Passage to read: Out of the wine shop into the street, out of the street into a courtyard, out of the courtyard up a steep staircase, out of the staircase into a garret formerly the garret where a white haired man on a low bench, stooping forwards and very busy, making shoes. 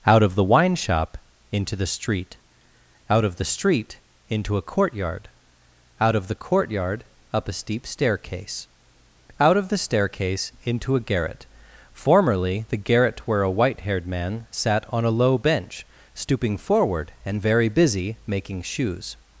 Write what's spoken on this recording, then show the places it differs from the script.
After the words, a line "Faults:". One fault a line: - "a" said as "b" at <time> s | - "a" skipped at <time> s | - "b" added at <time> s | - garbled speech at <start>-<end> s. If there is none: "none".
Out of the wine shop into the street, out of the street into a courtyard, out of the courtyard up a steep staircase, out of the staircase into a garret formerly the garret where a white haired man sat on a low bench, stooping forward and very busy, making shoes.
Faults:
- "sat" added at 14.5 s
- "forwards" said as "forward" at 16.6 s